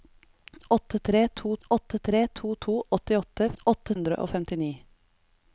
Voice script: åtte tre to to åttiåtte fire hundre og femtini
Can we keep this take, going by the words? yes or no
no